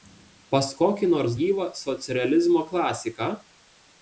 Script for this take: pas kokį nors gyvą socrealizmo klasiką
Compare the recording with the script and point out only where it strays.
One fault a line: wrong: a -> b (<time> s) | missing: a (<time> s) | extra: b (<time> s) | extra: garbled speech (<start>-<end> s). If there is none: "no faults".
no faults